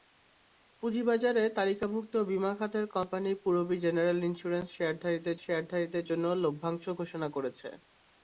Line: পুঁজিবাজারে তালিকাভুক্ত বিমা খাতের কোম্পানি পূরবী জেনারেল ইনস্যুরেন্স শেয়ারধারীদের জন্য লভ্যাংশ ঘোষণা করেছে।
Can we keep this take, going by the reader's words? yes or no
no